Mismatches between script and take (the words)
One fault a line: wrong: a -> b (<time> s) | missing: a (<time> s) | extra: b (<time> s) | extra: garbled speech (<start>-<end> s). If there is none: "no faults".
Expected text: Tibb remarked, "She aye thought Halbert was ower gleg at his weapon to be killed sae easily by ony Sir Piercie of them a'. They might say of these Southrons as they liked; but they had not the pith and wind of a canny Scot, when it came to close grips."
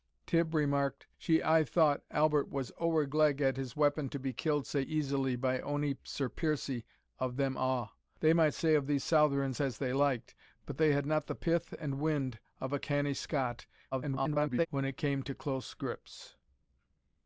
extra: garbled speech (13.9-14.7 s)